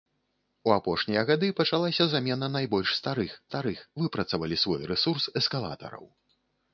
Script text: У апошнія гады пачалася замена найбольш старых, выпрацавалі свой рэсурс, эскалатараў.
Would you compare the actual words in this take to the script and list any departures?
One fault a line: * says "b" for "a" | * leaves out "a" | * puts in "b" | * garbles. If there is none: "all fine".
* puts in "старых"